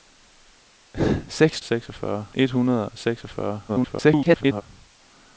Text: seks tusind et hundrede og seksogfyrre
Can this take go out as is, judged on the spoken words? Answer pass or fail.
fail